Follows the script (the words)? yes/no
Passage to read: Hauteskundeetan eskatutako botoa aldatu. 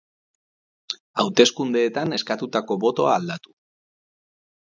yes